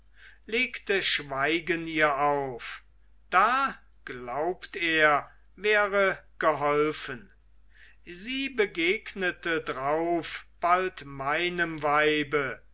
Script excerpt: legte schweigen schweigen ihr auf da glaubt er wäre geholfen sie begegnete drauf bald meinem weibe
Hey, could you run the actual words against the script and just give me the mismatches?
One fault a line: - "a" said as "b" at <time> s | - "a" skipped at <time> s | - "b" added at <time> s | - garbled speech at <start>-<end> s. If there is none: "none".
- "schweigen" skipped at 1.9 s